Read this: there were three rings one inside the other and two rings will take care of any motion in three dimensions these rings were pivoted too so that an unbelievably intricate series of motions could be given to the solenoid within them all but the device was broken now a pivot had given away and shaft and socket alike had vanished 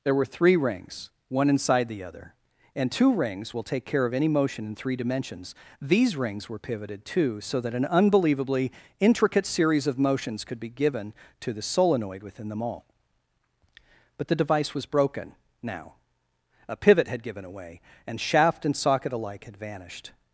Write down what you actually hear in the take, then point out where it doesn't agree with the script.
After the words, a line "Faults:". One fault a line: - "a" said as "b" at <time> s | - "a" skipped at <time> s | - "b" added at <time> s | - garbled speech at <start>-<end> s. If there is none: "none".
there were three rings one inside the other and two rings will take care of any motion in three dimensions these rings were pivoted too so that an unbelievably intricate series of motions could be given to the solenoid within them all but the device was broken now a pivot had given away and shaft and socket alike had vanished
Faults:
none